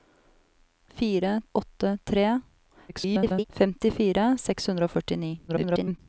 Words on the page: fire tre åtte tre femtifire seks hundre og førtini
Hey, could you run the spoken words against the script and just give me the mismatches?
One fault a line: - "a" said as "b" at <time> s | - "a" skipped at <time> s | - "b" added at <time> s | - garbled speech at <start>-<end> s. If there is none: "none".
- "tre" skipped at 1.4 s
- garbled speech at 2.9-3.4 s
- garbled speech at 5.5-6.0 s